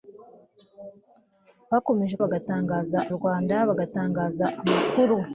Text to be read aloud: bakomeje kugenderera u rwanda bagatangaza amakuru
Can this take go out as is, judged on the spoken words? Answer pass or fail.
fail